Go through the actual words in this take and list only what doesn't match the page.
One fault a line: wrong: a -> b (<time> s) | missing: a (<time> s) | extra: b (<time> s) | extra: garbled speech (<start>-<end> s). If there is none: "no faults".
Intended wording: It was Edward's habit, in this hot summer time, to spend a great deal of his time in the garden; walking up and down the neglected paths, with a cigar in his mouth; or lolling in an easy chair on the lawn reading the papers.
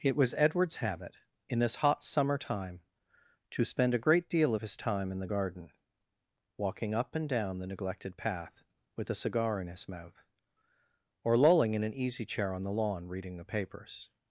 wrong: paths -> path (8.1 s)